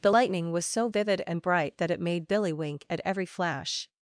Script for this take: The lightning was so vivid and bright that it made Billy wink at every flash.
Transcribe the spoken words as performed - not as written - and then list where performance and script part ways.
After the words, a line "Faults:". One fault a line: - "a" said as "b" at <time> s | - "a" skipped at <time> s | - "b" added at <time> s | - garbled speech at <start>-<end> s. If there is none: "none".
The lightning was so vivid and bright that it made Billy wink at every flash.
Faults:
none